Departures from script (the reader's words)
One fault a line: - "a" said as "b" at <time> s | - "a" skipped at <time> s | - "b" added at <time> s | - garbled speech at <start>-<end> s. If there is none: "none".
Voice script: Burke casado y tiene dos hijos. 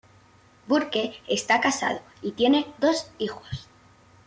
- "está" added at 1.3 s